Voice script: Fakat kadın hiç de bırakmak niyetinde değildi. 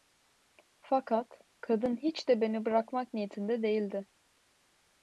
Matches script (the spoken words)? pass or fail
fail